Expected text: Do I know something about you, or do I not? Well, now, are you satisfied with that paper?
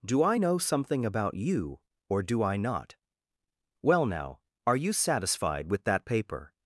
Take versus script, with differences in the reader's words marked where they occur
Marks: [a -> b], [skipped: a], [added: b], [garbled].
Do I know something about you, or do I not? Well, now, are you satisfied with that paper?